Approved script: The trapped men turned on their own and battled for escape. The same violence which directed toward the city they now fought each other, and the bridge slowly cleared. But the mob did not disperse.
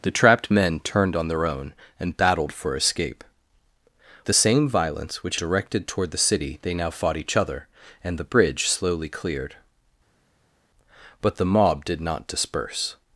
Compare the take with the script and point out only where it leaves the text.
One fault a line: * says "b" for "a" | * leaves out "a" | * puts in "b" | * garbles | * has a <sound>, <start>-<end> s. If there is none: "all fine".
all fine